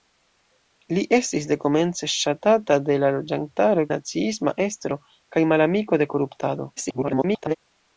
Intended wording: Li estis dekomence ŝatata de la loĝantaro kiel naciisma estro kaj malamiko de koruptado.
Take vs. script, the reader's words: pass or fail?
fail